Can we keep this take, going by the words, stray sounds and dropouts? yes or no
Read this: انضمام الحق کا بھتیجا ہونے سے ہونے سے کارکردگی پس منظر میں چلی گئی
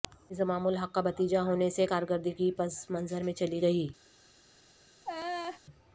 no